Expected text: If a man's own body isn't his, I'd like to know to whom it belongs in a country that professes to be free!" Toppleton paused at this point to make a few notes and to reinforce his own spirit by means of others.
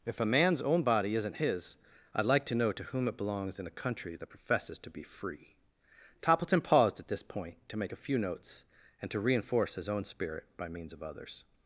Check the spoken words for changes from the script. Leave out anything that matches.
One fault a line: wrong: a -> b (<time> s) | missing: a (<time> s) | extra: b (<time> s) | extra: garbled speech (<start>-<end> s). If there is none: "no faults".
no faults